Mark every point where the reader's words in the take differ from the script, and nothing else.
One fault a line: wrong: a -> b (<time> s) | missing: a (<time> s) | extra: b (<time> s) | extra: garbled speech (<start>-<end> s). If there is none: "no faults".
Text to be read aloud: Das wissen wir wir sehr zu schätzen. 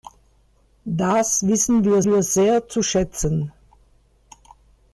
no faults